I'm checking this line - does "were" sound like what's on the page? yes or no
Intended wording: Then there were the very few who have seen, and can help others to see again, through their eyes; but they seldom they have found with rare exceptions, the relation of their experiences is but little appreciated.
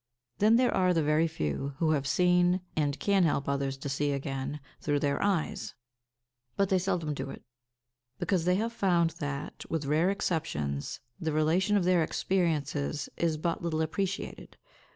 no